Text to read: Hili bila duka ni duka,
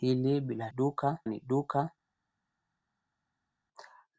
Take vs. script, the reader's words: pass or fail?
pass